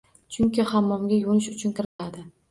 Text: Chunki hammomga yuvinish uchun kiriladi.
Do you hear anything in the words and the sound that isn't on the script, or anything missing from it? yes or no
yes